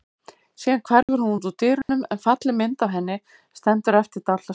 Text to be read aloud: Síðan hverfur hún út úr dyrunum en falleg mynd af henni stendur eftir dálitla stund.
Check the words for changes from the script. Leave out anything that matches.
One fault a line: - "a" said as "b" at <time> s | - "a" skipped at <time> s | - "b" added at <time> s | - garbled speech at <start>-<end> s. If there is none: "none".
none